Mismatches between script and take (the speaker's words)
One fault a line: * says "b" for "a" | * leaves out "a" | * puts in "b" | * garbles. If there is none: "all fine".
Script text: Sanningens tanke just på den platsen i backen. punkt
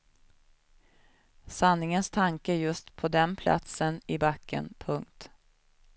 all fine